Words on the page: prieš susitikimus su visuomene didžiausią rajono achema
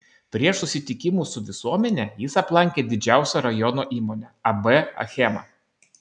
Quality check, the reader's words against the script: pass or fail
fail